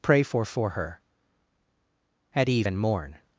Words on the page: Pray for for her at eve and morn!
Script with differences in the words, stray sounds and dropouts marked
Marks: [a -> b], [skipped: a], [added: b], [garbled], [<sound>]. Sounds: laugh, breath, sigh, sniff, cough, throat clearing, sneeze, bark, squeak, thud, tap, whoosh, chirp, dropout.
Pray for for her at eve and morn!